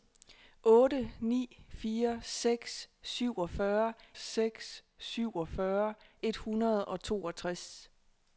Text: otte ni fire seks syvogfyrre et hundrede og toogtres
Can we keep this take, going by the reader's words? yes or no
no